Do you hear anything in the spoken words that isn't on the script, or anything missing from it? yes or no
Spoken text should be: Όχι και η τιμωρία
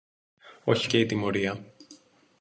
no